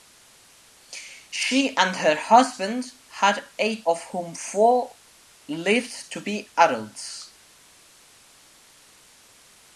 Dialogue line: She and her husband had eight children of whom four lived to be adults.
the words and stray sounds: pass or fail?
fail